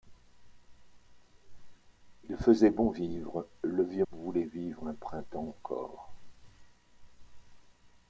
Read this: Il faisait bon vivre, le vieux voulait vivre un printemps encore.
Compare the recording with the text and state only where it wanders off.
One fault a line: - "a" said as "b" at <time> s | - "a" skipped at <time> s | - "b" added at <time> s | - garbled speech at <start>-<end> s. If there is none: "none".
none